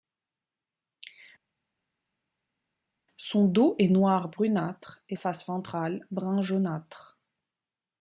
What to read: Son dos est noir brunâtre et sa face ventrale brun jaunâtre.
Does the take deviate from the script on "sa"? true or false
true